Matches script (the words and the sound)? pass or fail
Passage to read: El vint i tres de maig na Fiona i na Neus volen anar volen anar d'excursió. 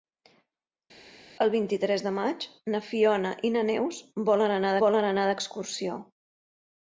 pass